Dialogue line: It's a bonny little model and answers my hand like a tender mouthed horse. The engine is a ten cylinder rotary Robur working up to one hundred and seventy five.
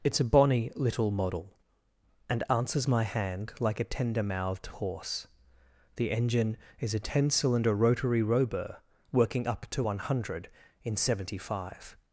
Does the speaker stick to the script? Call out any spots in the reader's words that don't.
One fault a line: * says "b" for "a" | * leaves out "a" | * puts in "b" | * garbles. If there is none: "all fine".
* says "in" for "and"